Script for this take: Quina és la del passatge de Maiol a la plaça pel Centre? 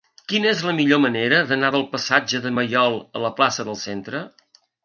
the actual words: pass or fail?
fail